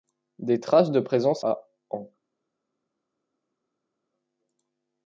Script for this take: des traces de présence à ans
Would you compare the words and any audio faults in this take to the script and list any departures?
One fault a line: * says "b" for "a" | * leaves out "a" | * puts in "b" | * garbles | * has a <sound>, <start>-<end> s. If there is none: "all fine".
all fine